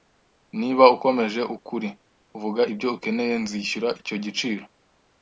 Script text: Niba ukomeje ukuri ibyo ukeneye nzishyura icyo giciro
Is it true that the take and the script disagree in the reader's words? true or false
true